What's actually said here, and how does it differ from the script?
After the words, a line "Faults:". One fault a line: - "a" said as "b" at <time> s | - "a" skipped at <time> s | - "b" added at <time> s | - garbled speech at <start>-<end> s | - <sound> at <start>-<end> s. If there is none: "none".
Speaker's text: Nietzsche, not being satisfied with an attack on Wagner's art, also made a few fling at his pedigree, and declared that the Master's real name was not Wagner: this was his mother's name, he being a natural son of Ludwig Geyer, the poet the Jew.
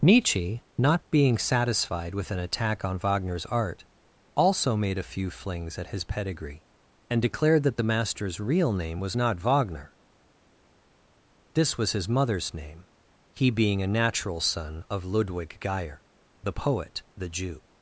Nietzsche, not being satisfied with an attack on Wagner's art, also made a few flings at his pedigree, and declared that the Master's real name was not Wagner: this was his mother's name, he being a natural son of Ludwig Geyer, the poet the Jew.
Faults:
- "fling" said as "flings" at 5.3 s